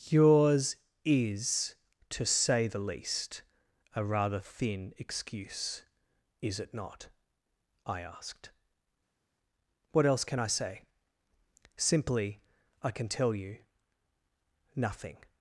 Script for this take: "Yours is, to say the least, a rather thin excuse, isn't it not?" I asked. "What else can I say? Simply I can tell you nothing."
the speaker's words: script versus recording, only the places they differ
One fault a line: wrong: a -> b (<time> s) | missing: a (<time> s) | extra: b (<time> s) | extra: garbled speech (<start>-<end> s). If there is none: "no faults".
wrong: isn't -> is (6.4 s)